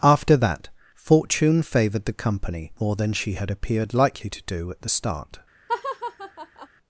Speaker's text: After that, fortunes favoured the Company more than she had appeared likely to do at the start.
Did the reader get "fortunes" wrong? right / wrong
wrong